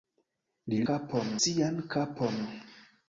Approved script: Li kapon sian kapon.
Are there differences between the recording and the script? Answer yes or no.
no